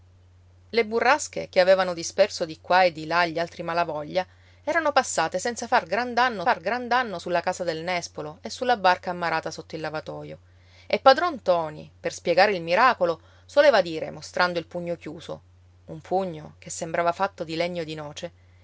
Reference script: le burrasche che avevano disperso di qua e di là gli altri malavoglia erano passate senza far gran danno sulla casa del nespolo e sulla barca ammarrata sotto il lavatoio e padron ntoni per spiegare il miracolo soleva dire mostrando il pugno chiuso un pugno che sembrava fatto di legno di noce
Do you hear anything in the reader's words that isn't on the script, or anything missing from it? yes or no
yes